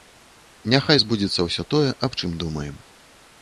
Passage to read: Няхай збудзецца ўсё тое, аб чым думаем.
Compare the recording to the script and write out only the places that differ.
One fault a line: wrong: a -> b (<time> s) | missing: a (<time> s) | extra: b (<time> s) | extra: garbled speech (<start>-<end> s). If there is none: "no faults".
no faults